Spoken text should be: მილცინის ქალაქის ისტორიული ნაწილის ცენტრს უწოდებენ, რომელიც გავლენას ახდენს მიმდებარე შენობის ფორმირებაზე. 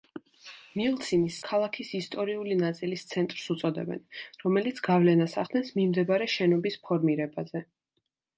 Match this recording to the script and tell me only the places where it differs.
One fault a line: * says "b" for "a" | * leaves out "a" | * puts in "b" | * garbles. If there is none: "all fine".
all fine